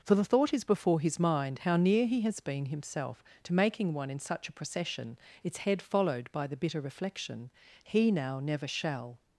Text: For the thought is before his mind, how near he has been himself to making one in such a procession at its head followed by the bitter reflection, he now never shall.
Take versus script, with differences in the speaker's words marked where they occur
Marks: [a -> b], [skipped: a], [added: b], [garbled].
For the thought is before his mind, how near he has been himself to making one in such a procession [skipped: at] its head followed by the bitter reflection, he now never shall.